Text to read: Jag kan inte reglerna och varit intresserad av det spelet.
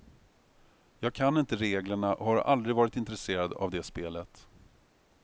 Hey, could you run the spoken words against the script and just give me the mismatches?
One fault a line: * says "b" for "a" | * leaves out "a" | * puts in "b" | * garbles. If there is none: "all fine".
* puts in "har aldrig"